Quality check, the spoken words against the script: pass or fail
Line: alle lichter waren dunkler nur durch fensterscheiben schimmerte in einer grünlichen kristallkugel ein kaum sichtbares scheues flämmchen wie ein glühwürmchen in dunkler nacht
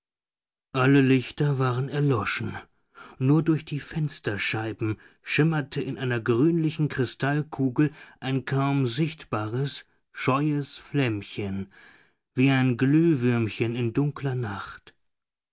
fail